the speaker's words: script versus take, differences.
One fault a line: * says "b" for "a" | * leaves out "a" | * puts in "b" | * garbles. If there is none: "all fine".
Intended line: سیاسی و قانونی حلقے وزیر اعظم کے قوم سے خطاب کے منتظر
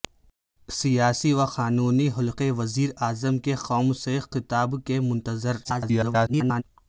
* garbles